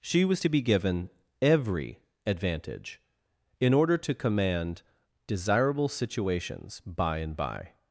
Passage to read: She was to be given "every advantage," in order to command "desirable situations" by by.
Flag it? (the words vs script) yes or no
yes